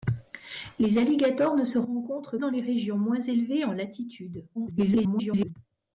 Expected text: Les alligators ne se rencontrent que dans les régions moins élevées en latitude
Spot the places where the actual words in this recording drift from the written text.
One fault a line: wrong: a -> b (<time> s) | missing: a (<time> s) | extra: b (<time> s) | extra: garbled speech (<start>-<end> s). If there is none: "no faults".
missing: que (2.4 s)
extra: garbled speech (4.5-5.5 s)